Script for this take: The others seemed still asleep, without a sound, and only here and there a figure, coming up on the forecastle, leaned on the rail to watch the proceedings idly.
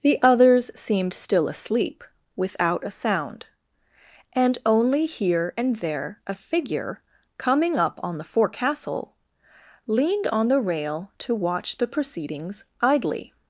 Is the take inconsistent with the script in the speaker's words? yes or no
no